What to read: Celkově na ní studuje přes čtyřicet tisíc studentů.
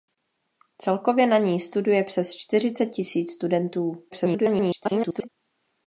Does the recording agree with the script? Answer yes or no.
no